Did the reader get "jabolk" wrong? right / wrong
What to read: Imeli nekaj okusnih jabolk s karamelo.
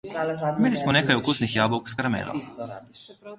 right